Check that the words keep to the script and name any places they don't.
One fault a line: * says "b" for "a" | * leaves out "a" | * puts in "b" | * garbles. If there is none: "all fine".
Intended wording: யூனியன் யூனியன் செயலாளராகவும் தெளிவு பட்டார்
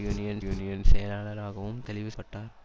all fine